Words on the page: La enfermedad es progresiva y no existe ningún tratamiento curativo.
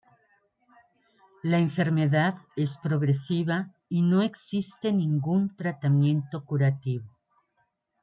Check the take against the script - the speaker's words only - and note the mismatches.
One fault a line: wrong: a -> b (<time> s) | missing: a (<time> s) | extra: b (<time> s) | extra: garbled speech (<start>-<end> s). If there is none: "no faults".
no faults